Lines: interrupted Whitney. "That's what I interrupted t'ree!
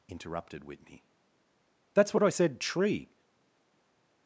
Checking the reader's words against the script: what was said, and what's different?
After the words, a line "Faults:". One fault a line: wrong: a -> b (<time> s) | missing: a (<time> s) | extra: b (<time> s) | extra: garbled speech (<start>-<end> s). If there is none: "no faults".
interrupted Whitney. "That's what I said t'ree!
Faults:
wrong: interrupted -> said (2.3 s)